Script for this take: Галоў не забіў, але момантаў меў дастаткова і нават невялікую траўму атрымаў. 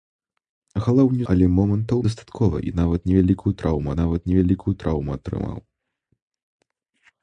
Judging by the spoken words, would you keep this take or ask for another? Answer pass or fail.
fail